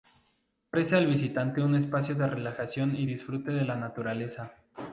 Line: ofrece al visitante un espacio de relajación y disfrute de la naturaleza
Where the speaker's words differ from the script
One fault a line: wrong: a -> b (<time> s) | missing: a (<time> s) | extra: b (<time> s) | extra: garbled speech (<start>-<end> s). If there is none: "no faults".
no faults